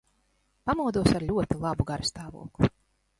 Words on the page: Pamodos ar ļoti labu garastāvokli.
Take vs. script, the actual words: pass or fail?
pass